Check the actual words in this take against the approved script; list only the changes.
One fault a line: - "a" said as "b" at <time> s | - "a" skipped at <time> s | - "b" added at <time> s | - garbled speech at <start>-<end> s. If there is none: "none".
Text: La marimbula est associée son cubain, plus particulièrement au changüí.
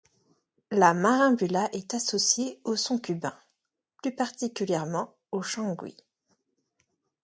- "au" added at 2.6 s